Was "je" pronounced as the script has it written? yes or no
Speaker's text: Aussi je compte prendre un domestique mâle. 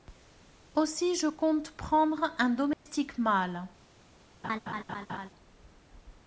yes